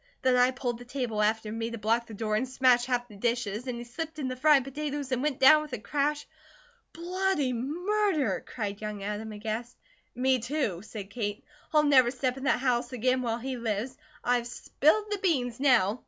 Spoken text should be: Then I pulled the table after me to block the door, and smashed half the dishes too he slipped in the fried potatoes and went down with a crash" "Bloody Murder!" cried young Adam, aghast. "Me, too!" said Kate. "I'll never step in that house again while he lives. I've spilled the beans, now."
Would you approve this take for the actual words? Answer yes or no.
no